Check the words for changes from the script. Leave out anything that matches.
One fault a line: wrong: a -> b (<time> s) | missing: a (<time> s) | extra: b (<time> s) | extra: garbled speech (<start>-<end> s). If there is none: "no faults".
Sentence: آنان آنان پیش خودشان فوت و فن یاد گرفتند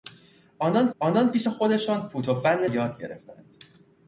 no faults